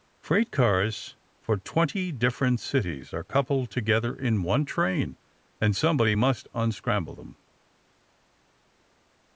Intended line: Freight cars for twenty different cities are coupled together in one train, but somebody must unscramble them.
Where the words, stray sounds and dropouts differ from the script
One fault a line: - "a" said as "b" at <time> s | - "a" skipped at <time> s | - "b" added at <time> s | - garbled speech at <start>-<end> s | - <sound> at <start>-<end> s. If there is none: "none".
- "but" said as "and" at 5.6 s